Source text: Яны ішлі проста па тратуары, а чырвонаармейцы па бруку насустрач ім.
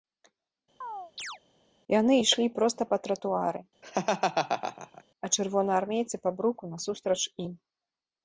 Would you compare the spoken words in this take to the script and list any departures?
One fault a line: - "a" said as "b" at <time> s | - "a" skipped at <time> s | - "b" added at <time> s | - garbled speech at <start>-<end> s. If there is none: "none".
none